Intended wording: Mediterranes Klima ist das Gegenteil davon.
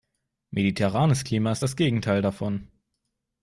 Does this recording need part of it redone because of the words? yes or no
no